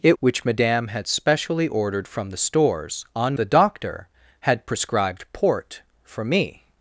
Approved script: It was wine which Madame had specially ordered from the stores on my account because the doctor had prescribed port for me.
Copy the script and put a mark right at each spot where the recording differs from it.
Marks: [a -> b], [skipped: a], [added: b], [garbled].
It [skipped: was wine] which Madame had specially ordered from the stores on [skipped: my account because] the doctor had prescribed port for me.